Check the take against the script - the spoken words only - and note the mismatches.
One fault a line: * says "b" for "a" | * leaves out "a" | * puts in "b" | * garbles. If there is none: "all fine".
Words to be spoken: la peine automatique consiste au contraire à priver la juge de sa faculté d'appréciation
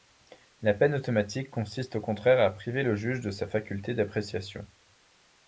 * says "le" for "la"